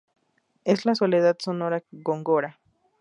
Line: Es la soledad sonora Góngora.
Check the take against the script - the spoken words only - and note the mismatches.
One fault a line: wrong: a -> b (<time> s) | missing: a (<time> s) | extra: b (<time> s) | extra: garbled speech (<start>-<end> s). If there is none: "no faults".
no faults